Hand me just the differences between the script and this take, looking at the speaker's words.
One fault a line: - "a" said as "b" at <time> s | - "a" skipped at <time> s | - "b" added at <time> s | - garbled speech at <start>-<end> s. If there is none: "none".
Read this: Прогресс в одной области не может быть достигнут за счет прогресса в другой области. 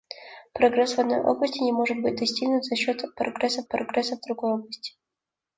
- "прогресса" added at 3.7 s